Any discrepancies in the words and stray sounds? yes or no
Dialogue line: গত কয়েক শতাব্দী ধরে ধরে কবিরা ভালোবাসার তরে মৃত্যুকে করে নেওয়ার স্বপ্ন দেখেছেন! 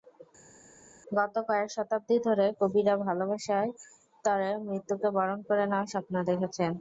yes